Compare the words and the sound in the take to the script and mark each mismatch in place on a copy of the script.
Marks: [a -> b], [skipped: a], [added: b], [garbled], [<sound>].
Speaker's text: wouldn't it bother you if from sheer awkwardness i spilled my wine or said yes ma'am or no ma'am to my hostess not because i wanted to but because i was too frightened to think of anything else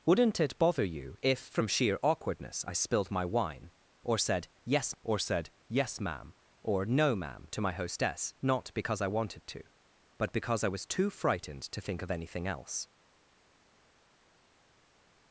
wouldn't it bother you if from sheer awkwardness i spilled my wine or said yes [added: or said yes] ma'am or no ma'am to my hostess not because i wanted to but because i was too frightened to think of anything else